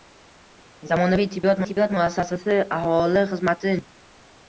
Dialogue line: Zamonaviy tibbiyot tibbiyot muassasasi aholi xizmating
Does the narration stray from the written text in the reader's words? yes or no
no